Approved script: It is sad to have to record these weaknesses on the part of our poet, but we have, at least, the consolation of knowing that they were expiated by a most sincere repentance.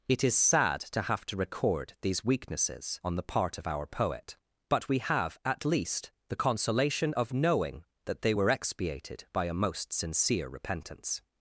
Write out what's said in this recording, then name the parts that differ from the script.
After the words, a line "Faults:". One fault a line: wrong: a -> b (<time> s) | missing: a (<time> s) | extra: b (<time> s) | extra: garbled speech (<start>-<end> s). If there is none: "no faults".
It is sad to have to record these weaknesses on the part of our poet, but we have, at least, the consolation of knowing that they were expiated by a most sincere repentance.
Faults:
no faults